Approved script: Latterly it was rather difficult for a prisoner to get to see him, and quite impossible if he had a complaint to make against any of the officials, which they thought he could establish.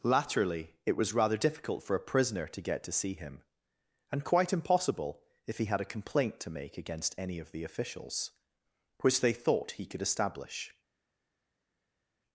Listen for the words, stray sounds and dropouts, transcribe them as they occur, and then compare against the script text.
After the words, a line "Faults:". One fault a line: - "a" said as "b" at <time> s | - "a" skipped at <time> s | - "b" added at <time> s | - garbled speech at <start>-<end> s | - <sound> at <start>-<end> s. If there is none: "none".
Latterly it was rather difficult for a prisoner to get to see him, and quite impossible if he had a complaint to make against any of the officials, which they thought he could establish.
Faults:
none